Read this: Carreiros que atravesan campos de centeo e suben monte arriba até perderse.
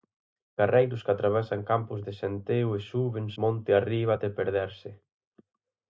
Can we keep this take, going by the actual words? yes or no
yes